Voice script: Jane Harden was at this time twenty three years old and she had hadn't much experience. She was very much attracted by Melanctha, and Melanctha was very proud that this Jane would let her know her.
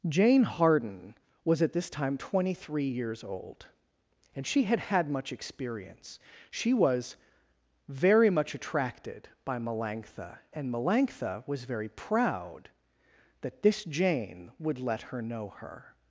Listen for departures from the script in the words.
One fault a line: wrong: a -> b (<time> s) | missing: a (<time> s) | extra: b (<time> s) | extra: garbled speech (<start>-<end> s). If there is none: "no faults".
wrong: hadn't -> had (4.8 s)